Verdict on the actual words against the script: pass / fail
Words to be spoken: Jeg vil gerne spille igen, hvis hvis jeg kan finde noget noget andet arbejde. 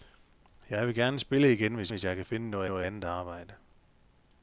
pass